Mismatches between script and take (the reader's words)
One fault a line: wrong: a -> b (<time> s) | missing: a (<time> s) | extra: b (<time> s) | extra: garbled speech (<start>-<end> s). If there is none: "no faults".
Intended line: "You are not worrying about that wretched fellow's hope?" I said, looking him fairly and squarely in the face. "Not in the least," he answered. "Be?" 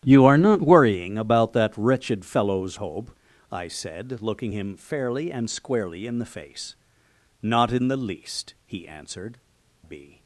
no faults